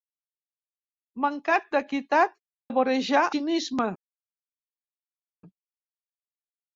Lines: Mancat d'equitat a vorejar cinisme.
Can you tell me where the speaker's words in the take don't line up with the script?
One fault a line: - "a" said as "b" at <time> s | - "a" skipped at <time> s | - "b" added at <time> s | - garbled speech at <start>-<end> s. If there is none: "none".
none